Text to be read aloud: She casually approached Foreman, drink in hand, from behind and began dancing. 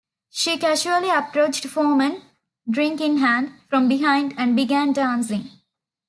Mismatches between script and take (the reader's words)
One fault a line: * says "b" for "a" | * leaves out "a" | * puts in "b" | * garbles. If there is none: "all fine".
all fine